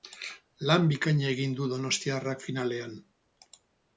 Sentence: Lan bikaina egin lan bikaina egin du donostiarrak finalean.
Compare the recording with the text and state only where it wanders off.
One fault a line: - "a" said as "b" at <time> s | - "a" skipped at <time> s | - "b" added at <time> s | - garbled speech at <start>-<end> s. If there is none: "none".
- "lan bikaina egin" skipped at 1.6 s